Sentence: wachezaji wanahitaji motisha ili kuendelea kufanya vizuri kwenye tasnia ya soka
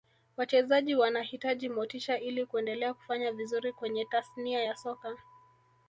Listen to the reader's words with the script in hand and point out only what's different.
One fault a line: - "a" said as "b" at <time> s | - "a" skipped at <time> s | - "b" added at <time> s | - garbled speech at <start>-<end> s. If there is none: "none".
none